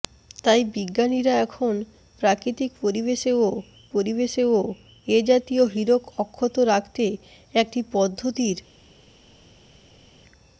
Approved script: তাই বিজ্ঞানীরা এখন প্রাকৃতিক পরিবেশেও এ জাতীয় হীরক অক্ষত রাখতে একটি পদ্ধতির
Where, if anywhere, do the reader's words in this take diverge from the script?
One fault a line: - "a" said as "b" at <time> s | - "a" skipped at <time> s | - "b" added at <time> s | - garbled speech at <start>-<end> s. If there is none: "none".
- "পরিবেশেও" added at 3.9 s